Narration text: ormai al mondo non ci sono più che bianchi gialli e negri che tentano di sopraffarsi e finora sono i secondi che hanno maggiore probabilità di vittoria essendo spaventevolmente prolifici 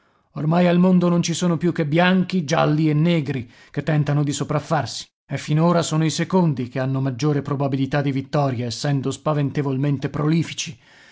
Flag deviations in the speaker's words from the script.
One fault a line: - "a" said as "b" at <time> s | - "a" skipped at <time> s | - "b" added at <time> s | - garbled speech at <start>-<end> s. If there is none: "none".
none